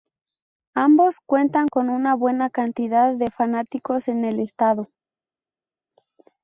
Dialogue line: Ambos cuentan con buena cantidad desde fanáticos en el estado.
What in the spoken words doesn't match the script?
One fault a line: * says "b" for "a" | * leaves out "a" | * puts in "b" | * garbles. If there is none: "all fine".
* puts in "una"
* says "de" for "desde"